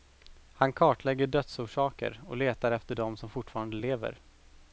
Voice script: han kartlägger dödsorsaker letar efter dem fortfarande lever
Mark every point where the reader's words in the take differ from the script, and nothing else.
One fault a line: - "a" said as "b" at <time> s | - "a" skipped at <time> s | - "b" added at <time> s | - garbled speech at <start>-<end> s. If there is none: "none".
- "och" added at 2.2 s
- "som" added at 3.2 s